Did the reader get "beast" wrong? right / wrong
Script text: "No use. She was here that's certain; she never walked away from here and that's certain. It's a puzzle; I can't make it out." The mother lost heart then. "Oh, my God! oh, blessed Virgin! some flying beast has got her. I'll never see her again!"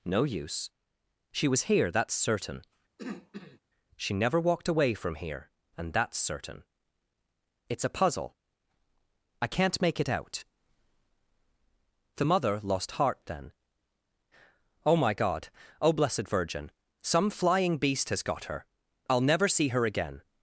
right